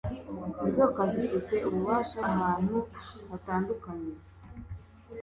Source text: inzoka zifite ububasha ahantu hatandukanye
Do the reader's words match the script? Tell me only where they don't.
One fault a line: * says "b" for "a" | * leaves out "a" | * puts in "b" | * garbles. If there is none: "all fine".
all fine